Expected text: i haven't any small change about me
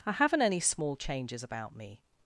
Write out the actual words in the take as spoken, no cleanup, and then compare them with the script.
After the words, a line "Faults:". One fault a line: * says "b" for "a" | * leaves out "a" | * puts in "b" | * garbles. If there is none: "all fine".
i haven't any small changes about me
Faults:
* says "changes" for "change"